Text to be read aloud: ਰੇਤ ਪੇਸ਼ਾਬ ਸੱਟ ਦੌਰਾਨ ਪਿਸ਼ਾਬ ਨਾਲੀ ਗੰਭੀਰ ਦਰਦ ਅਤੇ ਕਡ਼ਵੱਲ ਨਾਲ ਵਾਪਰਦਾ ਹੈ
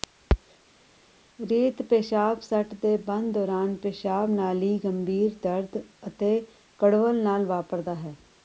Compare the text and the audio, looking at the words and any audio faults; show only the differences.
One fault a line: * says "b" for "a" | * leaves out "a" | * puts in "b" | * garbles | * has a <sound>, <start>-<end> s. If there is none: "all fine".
* puts in "ਦੇ ਬੰਦ"